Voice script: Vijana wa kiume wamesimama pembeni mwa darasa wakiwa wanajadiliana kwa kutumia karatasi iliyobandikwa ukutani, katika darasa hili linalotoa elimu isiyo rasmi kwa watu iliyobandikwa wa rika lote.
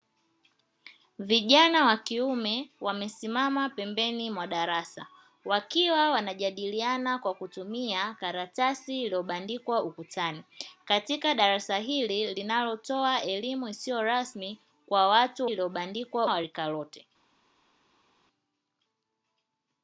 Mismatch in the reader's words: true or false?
false